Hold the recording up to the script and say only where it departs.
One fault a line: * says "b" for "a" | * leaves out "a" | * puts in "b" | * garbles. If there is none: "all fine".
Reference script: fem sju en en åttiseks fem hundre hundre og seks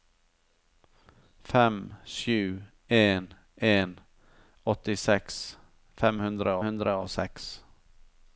all fine